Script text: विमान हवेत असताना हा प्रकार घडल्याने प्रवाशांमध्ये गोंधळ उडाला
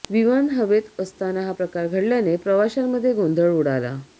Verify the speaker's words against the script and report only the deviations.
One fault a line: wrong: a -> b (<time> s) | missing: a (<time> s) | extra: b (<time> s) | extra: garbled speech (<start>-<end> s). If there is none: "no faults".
no faults